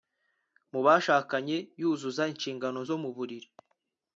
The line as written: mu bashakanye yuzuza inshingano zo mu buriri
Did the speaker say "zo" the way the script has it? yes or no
yes